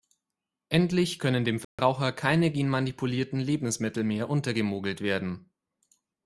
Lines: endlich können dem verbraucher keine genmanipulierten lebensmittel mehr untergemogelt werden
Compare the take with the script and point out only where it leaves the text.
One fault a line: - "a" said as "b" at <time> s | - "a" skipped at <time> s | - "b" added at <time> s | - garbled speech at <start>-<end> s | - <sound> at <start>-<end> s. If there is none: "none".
- dropout at 1.6-1.8 s